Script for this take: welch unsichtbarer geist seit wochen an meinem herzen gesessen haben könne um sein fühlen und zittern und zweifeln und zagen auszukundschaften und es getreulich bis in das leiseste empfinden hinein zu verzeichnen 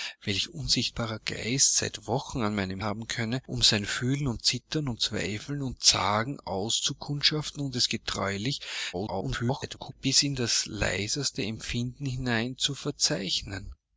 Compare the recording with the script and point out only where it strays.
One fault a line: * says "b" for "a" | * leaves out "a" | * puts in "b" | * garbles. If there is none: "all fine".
* leaves out "herzen gesessen"
* garbles